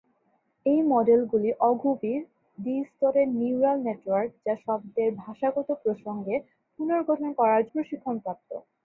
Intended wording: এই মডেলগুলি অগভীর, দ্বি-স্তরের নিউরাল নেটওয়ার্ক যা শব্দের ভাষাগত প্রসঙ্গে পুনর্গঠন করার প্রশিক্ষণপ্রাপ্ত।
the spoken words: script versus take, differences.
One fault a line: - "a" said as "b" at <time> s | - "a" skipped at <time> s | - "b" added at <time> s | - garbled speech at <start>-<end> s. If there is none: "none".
none